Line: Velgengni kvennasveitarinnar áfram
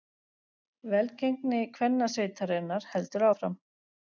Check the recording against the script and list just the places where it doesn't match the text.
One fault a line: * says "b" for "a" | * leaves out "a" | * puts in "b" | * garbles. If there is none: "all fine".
* puts in "heldur"